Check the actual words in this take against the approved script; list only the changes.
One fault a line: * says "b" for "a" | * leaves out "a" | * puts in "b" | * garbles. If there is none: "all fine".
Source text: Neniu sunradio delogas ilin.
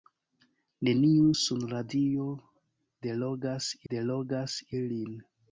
* puts in "delogas"